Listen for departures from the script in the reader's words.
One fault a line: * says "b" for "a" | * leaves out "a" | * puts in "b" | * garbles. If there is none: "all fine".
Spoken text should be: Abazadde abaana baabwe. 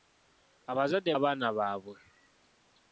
all fine